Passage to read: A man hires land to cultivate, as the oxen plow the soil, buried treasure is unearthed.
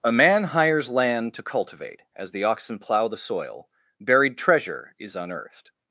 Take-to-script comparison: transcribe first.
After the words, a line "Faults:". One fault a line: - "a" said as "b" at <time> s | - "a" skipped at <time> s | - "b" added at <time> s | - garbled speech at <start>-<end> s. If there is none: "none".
A man hires land to cultivate, as the oxen plow the soil, buried treasure is unearthed.
Faults:
none